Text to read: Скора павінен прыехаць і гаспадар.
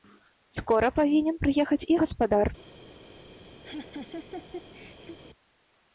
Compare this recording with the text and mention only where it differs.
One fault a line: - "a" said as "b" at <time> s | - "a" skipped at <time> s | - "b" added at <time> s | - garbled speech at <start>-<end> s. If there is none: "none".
none